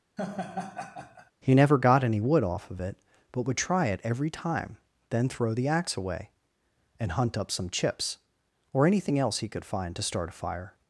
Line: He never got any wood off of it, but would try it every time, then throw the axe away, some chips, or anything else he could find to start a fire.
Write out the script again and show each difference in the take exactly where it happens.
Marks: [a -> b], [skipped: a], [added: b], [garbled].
He never got any wood off of it, but would try it every time, then throw the axe away, [added: and hunt up] some chips, or anything else he could find to start a fire.